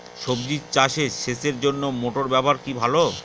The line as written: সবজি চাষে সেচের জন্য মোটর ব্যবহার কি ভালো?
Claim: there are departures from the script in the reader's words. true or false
false